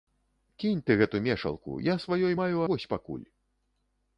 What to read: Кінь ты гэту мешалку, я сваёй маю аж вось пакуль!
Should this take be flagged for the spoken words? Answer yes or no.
yes